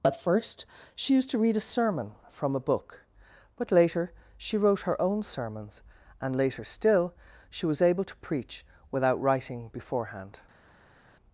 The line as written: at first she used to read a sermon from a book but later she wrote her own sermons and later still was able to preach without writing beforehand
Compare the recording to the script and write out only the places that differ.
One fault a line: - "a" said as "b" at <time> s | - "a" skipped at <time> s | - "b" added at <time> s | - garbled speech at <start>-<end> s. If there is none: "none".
- "she" added at 7.5 s